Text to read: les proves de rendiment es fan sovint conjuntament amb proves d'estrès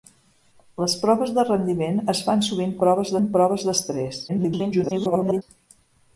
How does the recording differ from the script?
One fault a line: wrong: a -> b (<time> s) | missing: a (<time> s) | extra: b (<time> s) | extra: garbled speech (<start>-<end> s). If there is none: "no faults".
wrong: conjuntament -> proves (2.9 s)
extra: garbled speech (4.3-5.4 s)